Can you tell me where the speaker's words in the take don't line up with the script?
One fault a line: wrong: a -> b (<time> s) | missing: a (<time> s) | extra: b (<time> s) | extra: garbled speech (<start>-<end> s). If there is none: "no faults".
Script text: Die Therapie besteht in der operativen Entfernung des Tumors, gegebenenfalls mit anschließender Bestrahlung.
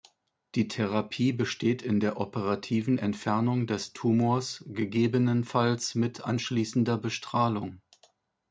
no faults